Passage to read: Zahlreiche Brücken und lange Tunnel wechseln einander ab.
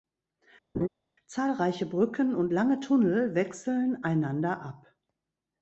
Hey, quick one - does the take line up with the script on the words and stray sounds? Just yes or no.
no